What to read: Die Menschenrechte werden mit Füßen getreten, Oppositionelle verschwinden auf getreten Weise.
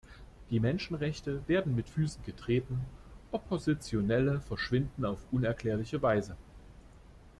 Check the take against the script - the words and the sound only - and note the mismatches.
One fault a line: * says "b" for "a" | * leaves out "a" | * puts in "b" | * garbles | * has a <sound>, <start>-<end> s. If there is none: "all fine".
* says "unerklärliche" for "getreten"